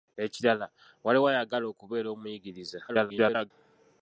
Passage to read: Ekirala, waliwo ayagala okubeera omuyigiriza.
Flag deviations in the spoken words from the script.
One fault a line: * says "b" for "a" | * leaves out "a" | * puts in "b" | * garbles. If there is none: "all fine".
* garbles